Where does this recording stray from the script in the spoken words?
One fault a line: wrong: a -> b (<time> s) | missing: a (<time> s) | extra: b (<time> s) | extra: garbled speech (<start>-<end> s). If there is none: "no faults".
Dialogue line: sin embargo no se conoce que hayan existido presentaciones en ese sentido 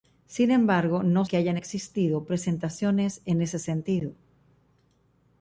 missing: se conoce (1.2 s)